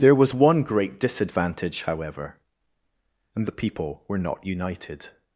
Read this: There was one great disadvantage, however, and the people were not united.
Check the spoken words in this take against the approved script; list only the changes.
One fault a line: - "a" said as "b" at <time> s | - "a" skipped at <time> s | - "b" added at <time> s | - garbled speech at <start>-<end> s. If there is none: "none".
none